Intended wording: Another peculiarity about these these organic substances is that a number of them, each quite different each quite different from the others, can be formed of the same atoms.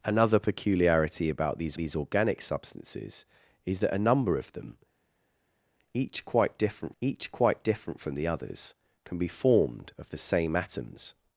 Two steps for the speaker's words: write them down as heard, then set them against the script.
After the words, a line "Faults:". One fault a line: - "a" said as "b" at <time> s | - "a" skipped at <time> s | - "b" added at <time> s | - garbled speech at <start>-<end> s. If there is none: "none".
Another peculiarity about these these organic substances is that a number of them, each quite different each quite different from the others, can be formed of the same atoms.
Faults:
none